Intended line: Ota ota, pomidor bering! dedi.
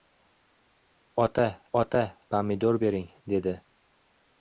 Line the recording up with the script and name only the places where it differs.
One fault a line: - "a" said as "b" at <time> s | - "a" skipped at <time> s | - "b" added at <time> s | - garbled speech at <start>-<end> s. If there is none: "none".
none